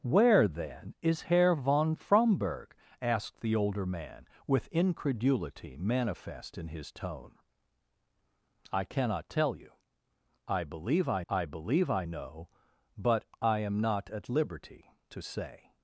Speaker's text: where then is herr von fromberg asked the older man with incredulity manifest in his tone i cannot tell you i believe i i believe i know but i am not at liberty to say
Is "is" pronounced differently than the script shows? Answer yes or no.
no